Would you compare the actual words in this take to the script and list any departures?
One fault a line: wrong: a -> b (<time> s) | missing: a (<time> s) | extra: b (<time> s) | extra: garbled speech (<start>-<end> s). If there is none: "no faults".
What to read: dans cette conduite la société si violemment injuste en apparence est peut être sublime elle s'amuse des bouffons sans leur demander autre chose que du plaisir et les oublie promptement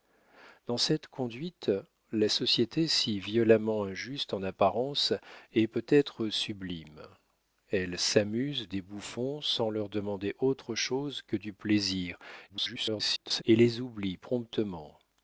extra: garbled speech (12.5-13.4 s)